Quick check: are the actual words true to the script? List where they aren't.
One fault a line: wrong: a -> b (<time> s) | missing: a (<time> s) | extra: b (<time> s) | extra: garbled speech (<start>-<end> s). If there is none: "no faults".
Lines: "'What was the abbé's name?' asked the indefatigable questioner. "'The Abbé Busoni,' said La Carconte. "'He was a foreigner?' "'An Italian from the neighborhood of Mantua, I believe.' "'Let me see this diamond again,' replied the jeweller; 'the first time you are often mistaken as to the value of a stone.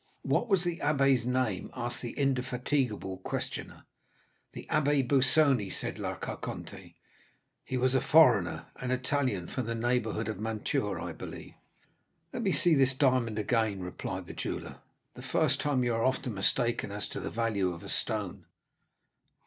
no faults